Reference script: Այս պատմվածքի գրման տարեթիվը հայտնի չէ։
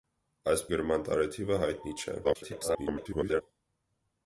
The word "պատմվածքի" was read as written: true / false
false